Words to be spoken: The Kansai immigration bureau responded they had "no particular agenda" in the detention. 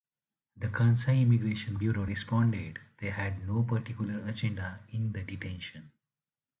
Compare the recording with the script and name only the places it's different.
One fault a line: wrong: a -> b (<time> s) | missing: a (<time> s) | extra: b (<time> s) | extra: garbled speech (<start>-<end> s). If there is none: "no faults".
no faults